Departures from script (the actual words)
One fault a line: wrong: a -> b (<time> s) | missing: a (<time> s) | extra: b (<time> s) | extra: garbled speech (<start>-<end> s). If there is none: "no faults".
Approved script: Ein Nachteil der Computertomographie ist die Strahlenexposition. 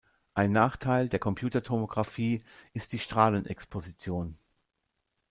no faults